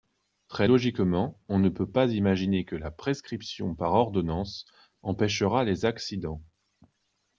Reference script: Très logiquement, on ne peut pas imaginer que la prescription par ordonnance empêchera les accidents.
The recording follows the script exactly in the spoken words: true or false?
true